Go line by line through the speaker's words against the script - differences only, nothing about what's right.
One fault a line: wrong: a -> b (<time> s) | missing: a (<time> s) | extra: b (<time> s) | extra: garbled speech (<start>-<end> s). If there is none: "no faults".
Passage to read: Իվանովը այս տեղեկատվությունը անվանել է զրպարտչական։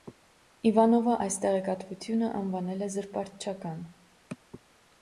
no faults